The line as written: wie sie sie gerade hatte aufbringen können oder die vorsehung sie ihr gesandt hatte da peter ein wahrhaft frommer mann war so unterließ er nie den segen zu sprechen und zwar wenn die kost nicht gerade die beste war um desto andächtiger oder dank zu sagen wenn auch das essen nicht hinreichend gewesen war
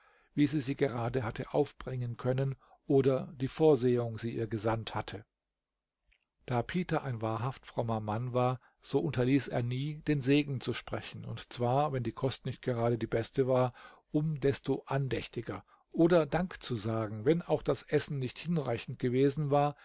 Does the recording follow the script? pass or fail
pass